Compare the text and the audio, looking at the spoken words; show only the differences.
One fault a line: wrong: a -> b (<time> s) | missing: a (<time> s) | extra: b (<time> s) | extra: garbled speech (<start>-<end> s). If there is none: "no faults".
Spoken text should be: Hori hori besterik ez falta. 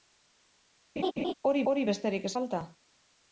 no faults